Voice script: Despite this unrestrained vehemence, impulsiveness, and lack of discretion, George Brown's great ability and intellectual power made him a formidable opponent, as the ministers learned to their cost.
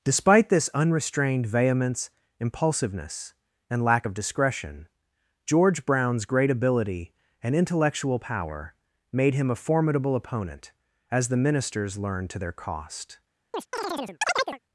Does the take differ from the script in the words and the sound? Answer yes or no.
yes